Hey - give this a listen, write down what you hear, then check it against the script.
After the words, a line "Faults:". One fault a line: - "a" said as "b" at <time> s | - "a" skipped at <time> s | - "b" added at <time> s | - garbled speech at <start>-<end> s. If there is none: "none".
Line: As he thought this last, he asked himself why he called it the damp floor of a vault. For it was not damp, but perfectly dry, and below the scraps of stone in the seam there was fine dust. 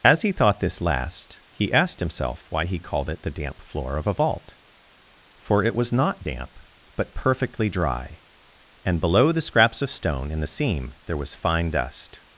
As he thought this last, he asked himself why he called it the damp floor of a vault. For it was not damp, but perfectly dry, and below the scraps of stone in the seam there was fine dust.
Faults:
none